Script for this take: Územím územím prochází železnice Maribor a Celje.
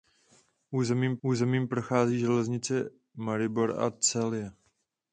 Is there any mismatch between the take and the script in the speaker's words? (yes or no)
no